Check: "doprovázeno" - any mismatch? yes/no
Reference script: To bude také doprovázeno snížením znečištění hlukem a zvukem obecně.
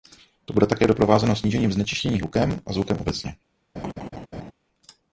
no